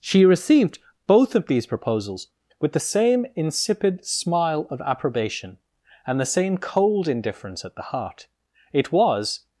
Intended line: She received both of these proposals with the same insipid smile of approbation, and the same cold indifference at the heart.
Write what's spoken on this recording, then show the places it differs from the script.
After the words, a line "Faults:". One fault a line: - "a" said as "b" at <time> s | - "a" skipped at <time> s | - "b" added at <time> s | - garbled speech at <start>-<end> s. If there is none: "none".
She received both of these proposals with the same insipid smile of approbation, and the same cold indifference at the heart. It was
Faults:
- "It was" added at 8.7 s